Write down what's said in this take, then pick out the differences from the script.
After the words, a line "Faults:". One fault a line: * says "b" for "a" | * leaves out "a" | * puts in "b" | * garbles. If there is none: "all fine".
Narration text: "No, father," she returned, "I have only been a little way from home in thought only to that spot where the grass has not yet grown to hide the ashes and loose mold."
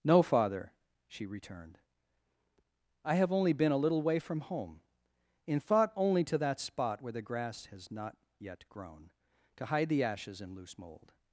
"No, father," she returned, "I have only been a little way from home in thought only to that spot where the grass has not yet grown to hide the ashes and loose mold."
Faults:
all fine